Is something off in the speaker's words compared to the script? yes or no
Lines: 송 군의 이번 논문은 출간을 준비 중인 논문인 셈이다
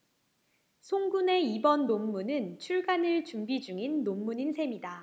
no